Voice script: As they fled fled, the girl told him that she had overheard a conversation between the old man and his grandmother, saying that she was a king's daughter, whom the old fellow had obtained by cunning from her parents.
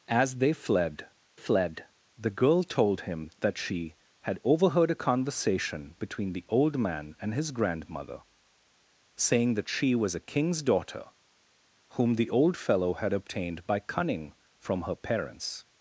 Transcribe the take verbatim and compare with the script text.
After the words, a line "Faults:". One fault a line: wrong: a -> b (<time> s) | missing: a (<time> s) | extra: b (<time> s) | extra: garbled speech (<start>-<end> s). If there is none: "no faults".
As they fled fled, the girl told him that she had overheard a conversation between the old man and his grandmother, saying that she was a king's daughter, whom the old fellow had obtained by cunning from her parents.
Faults:
no faults